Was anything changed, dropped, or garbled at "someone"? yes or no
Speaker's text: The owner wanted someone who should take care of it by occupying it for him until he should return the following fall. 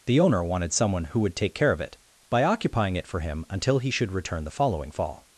no